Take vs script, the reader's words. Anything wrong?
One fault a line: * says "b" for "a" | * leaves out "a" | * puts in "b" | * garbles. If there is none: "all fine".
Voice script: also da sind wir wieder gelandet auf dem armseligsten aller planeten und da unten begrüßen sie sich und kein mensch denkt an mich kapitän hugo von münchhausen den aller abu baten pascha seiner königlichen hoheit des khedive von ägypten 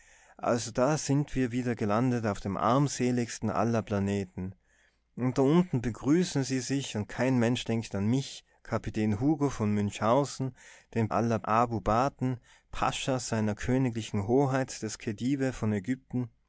all fine